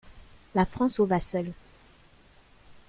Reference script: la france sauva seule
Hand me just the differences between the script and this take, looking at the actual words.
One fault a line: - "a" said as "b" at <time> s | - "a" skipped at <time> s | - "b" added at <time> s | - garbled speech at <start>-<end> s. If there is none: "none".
none